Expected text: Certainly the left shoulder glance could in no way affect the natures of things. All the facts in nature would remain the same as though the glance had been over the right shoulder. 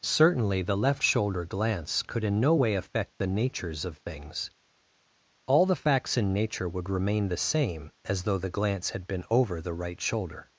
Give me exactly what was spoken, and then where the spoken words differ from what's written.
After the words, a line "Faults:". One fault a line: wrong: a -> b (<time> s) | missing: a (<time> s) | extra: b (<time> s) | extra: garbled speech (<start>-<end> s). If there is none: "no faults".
Certainly the left shoulder glance could in no way affect the natures of things. All the facts in nature would remain the same as though the glance had been over the right shoulder.
Faults:
no faults